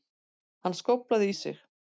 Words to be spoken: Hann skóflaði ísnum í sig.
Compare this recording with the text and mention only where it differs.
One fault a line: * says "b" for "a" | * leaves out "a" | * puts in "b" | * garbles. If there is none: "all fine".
* leaves out "ísnum"